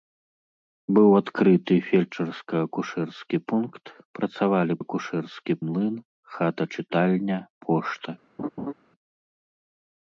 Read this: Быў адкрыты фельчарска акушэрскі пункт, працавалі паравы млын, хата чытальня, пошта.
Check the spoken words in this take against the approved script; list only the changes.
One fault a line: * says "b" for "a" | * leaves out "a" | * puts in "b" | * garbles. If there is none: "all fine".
* says "акушэрскі" for "паравы"